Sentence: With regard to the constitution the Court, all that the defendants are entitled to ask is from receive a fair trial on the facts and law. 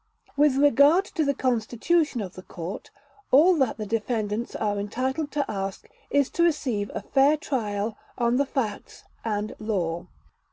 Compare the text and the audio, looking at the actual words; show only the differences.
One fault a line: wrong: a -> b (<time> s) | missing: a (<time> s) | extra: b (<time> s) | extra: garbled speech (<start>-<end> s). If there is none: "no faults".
extra: of (2.2 s)
wrong: from -> to (6.3 s)